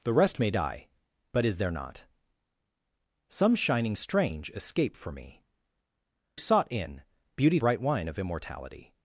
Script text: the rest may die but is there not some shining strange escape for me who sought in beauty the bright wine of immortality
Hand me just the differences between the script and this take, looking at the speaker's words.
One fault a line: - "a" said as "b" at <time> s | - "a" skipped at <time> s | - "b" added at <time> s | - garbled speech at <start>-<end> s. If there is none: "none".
- "who" skipped at 5.4 s
- "the" skipped at 7.6 s